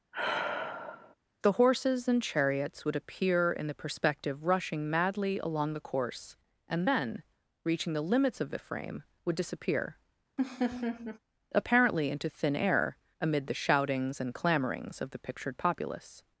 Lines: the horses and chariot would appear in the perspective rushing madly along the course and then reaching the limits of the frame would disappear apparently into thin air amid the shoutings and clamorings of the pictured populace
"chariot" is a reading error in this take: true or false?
true